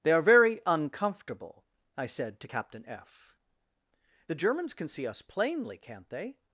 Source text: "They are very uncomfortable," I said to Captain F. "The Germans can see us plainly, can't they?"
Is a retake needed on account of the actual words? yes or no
no